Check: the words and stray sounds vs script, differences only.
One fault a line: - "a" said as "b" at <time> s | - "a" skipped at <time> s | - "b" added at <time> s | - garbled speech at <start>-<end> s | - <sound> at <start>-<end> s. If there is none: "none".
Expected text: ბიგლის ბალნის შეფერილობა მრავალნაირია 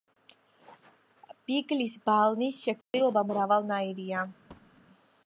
- dropout at 2.8-2.9 s
- thud at 4.5-4.8 s